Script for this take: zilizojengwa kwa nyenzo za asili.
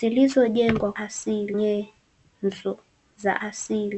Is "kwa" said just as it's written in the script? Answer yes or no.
no